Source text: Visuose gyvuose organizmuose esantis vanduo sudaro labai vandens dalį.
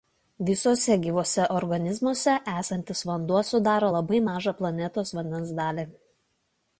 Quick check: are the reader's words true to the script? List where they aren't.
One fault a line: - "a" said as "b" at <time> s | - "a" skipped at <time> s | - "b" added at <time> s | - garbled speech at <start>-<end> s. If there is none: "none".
- "mažą planetos" added at 4.3 s